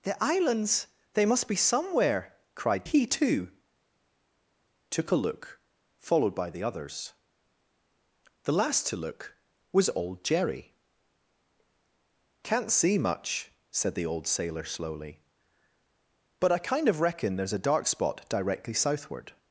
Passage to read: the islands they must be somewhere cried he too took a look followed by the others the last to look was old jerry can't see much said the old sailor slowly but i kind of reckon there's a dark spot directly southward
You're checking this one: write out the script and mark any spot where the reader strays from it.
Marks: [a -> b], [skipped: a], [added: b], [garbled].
the islands they must be somewhere cried he too took a look followed by the others the last to look was old jerry can't see much said the old sailor slowly but i kind of reckon there's a dark spot directly southward